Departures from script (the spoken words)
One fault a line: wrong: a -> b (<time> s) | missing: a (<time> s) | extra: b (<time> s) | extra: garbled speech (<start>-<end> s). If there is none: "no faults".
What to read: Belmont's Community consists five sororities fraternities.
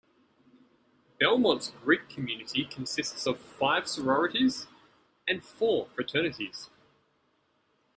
extra: Greek (1.8 s)
extra: of (3.2 s)
extra: and four (5.3 s)